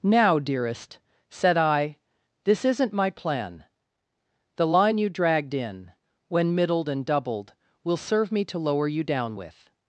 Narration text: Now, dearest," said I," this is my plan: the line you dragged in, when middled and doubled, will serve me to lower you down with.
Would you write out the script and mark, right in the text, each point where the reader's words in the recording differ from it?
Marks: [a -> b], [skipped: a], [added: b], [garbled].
Now, dearest," said I," this [is -> isn't] my plan: the line you dragged in, when middled and doubled, will serve me to lower you down with.